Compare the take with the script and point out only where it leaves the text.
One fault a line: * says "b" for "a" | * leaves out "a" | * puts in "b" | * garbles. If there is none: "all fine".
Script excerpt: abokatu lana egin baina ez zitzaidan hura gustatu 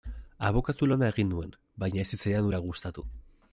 * puts in "nuen"